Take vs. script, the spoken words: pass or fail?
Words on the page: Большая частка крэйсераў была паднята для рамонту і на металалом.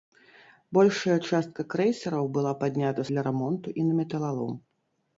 pass